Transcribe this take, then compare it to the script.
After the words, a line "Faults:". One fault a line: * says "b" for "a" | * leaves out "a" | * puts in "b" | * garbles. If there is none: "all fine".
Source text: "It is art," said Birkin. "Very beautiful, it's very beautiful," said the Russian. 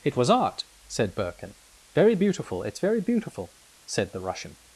"It was art," said Birkin. "Very beautiful, it's very beautiful," said the Russian.
Faults:
* says "was" for "is"